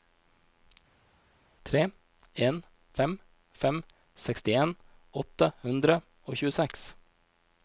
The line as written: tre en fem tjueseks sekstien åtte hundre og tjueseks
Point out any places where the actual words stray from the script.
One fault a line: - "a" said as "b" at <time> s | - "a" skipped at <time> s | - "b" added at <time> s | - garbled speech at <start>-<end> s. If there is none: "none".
- "tjueseks" said as "fem" at 3.6 s